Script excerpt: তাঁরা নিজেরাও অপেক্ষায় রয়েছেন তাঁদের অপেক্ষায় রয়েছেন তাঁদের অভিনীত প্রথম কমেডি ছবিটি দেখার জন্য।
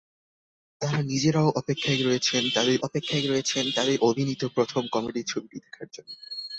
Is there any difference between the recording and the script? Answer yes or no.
no